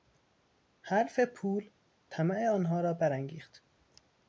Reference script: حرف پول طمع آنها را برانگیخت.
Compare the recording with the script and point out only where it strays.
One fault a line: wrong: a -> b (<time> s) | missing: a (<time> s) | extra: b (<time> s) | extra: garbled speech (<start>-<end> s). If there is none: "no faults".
no faults